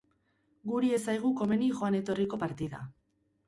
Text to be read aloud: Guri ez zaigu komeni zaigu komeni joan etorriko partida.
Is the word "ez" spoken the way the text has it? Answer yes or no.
yes